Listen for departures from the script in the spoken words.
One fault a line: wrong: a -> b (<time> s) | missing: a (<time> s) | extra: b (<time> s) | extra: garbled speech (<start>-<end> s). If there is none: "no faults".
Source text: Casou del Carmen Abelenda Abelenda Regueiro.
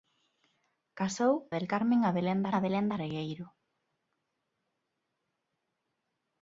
no faults